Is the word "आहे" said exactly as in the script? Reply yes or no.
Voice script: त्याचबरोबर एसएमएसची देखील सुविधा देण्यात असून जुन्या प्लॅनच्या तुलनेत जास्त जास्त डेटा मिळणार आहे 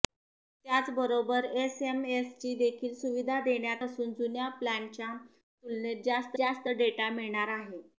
yes